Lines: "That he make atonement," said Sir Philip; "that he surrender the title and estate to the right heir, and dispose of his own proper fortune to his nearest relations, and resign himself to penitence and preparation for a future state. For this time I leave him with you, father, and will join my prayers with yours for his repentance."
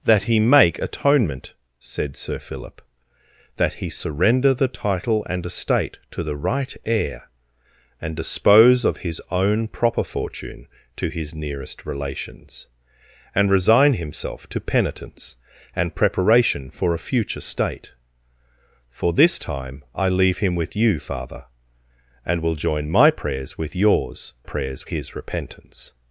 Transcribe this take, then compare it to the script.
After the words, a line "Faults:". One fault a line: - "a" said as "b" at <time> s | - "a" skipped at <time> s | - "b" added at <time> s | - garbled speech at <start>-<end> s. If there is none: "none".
"That he make atonement," said Sir Philip; "that he surrender the title and estate to the right heir, and dispose of his own proper fortune to his nearest relations, and resign himself to penitence and preparation for a future state. For this time I leave him with you, father, and will join my prayers with yours prayers his repentance."
Faults:
- "for" said as "prayers" at 24.4 s